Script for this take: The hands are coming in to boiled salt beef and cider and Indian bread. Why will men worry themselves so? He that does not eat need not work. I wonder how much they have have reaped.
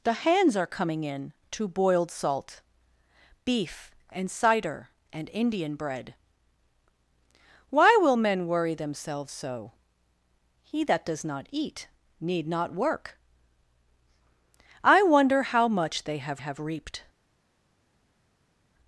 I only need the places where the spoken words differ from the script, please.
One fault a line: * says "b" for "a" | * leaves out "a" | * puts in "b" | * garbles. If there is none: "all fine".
all fine